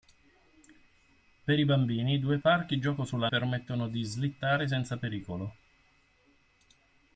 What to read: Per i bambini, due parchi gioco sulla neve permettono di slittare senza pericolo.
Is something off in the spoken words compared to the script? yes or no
yes